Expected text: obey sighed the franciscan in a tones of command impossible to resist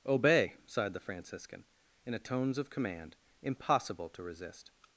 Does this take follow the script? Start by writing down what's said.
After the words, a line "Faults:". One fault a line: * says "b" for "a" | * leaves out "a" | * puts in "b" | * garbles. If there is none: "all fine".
obey sighed the franciscan in a tones of command impossible to resist
Faults:
all fine